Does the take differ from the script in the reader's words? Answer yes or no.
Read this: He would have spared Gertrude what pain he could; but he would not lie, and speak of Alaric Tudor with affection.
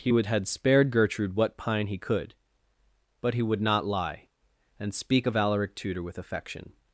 yes